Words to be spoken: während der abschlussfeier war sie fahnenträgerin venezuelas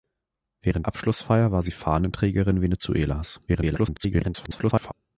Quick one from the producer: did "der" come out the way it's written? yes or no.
no